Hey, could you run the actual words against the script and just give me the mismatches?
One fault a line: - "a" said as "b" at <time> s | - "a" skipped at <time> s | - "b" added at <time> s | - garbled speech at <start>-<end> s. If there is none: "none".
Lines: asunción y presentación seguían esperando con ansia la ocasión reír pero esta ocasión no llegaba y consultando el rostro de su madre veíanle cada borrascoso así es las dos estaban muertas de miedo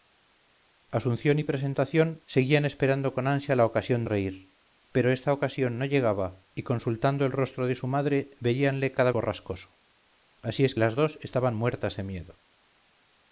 none